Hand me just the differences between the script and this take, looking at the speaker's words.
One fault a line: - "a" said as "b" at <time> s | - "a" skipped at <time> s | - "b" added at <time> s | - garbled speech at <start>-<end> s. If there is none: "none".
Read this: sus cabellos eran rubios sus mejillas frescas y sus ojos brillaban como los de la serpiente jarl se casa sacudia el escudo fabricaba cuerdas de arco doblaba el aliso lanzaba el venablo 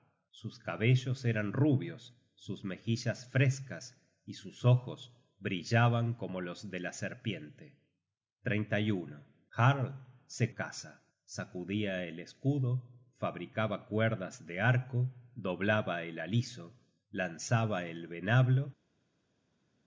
none